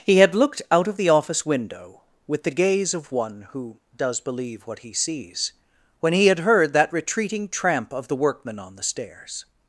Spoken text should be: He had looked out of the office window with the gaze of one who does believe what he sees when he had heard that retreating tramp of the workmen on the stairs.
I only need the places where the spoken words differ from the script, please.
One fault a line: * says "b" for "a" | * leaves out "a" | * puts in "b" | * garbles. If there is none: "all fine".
all fine